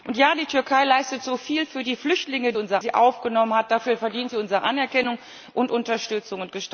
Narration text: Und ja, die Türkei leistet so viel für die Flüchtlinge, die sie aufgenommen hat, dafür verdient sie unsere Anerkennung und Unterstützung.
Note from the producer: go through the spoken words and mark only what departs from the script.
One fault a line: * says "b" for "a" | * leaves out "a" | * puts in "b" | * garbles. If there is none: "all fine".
* says "unsere" for "die"